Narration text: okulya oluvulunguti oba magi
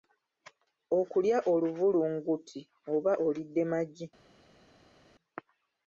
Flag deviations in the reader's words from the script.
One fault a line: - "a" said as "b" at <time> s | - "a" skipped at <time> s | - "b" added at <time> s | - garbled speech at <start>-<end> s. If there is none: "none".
- "olidde" added at 3.3 s